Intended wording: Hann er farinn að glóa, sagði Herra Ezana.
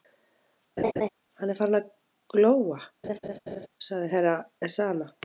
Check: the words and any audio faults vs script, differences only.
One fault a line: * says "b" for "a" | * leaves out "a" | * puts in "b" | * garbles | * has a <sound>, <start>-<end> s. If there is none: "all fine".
* has a laugh, 0.8-1.1 s
* has a laugh, 3.0-3.7 s